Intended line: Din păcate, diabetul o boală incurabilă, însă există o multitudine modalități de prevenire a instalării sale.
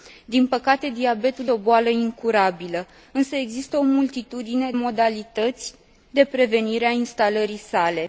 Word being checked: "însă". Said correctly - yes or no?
yes